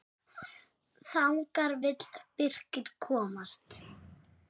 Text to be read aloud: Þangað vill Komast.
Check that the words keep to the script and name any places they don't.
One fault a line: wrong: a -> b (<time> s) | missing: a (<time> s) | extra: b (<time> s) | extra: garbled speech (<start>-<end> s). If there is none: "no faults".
extra: Birkir (2.4 s)